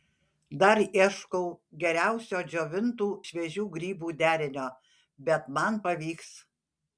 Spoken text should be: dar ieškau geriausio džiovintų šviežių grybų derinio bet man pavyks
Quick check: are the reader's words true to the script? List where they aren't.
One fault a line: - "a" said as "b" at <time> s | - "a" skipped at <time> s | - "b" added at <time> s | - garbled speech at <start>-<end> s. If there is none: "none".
none